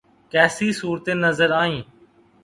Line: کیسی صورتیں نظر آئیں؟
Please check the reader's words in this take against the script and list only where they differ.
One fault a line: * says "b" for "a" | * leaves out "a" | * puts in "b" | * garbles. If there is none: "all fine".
all fine